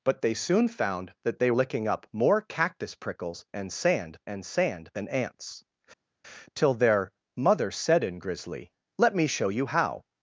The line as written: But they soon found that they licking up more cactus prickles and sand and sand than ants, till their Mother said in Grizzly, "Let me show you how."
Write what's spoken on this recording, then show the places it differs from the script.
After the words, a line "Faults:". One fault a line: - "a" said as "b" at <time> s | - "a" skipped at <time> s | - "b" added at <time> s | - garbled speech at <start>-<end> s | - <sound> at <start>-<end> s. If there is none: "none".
But they soon found that they licking up more cactus prickles and sand and sand than ants, till their Mother said in Grizzly, "Let me show you how."
Faults:
none